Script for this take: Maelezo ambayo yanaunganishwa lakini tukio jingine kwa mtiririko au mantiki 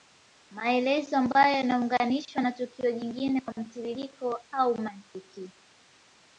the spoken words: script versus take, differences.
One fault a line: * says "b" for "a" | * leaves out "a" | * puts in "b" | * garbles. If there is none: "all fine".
* says "na" for "lakini"